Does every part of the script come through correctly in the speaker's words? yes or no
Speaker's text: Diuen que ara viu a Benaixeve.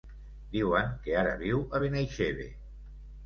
yes